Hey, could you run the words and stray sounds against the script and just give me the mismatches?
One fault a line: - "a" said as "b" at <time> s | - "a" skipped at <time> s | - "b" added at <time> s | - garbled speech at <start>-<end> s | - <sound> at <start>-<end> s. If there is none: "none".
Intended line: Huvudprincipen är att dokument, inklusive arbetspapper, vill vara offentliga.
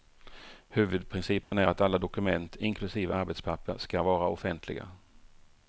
- dropout at 1.4-1.5 s
- "alla" added at 1.8 s
- "vill" said as "ska" at 3.8 s